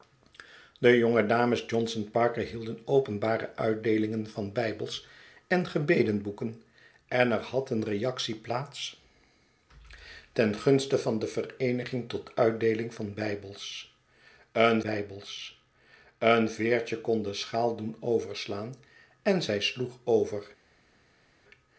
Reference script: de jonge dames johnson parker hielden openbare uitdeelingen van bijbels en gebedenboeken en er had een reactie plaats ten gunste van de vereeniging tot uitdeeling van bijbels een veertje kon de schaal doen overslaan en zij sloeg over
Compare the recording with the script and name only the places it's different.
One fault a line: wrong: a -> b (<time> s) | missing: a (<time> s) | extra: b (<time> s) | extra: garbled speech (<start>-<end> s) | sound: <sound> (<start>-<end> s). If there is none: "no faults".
extra: bijbels een (14.8 s)